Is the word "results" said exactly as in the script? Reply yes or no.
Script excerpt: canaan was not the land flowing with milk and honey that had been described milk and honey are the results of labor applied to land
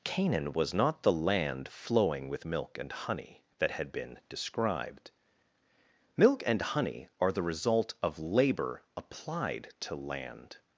no